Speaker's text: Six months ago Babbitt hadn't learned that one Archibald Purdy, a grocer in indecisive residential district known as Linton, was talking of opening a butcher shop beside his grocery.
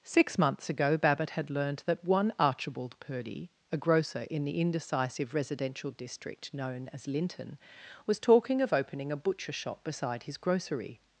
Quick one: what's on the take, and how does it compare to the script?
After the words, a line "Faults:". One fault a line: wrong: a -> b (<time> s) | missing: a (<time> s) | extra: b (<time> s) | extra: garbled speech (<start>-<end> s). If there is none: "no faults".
Six months ago Babbitt had learned that one Archibald Purdy, a grocer in the indecisive residential district known as Linton, was talking of opening a butcher shop beside his grocery.
Faults:
wrong: hadn't -> had (1.3 s)
extra: the (4.5 s)